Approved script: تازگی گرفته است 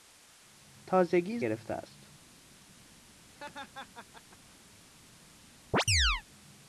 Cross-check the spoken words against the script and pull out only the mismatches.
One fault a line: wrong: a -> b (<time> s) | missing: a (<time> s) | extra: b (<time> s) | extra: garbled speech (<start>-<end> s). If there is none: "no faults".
no faults